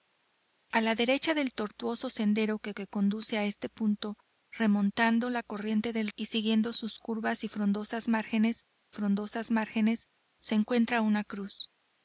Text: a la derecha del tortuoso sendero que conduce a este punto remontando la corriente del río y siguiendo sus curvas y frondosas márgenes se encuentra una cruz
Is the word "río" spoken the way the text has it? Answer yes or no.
no